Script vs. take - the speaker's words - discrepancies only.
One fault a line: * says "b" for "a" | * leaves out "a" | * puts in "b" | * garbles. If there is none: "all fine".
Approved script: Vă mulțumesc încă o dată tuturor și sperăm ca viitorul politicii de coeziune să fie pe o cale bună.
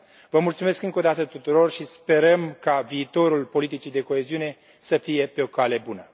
all fine